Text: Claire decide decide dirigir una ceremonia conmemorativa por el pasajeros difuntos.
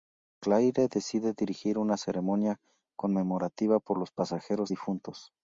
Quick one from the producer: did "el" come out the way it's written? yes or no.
no